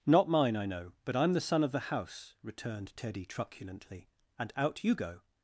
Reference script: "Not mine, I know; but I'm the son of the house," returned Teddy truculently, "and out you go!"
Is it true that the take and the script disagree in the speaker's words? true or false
false